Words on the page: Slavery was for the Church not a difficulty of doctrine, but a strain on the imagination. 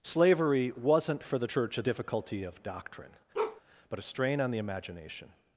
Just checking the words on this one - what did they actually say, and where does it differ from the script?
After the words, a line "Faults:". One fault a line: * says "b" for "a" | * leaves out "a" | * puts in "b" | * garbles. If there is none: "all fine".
Slavery wasn't for the Church a difficulty of doctrine, but a strain on the imagination.
Faults:
* says "wasn't" for "was"
* leaves out "not"